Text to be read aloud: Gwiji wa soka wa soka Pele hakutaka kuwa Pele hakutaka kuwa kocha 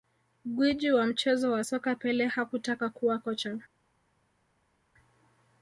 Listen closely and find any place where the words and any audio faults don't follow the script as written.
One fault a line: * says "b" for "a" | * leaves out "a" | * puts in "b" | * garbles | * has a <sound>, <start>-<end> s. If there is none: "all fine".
* says "mchezo" for "soka"
* leaves out "Pele hakutaka kuwa"